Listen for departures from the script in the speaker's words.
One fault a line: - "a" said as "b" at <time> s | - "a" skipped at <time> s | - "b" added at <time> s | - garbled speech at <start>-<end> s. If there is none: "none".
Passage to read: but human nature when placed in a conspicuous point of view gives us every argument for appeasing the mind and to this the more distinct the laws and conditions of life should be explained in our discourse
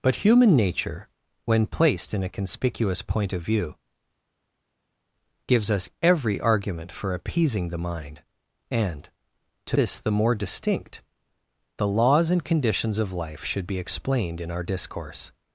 none